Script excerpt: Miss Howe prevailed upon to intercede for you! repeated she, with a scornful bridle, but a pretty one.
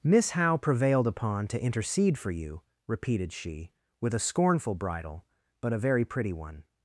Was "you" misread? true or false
false